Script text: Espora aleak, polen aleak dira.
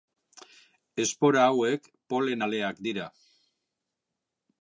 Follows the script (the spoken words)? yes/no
no